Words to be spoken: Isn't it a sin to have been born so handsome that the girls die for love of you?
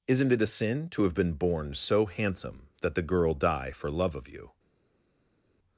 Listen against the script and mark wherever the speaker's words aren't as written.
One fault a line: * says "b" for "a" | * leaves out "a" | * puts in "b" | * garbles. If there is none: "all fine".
* says "girl" for "girls"